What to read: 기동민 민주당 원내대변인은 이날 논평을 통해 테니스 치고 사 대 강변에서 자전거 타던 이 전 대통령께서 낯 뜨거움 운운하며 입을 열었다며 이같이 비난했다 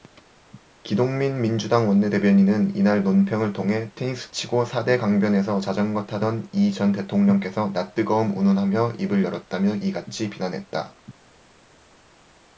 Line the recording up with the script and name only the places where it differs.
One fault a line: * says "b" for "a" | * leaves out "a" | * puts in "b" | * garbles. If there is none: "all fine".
all fine